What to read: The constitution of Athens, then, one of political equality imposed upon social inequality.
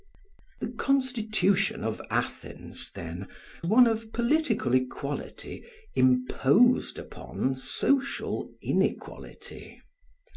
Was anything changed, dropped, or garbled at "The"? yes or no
no